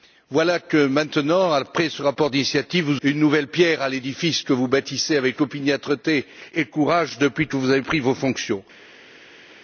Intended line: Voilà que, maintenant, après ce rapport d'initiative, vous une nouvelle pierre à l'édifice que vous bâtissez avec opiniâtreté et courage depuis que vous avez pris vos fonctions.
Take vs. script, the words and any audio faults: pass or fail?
pass